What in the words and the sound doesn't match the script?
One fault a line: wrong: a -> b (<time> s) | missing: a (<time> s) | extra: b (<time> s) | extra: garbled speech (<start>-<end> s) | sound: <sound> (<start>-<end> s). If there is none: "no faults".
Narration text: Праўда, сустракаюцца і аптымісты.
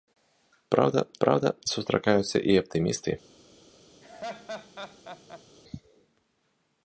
extra: праўда (1.2 s)
sound: laugh (4.0-5.4 s)